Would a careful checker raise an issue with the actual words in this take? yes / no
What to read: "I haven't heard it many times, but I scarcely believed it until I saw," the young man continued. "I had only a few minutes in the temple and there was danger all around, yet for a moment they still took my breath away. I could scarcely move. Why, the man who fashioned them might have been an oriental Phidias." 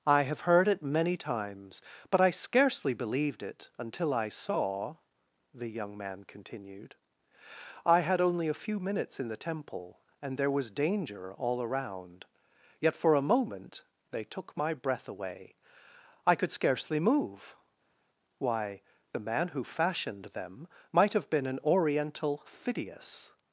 yes